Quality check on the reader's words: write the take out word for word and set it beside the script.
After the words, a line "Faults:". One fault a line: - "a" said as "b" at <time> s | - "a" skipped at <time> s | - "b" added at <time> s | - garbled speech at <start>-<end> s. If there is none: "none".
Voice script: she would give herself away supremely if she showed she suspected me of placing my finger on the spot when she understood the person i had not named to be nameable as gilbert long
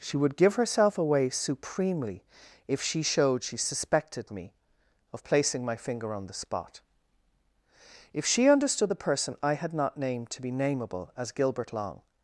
she would give herself away supremely if she showed she suspected me of placing my finger on the spot if she understood the person i had not named to be nameable as gilbert long
Faults:
- "when" said as "if" at 8.1 s